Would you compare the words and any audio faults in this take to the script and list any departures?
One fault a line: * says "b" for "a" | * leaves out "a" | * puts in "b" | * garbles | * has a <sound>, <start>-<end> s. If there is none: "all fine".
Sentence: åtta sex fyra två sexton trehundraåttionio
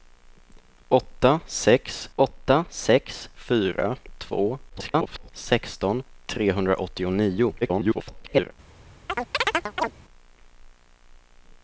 * puts in "åtta sex"
* garbles
* garbles
* has a chirp, 9.1-9.9 s